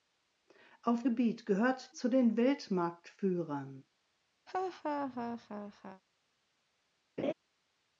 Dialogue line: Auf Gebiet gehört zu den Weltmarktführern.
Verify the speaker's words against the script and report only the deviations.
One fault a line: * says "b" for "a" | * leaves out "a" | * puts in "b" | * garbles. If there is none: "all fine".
all fine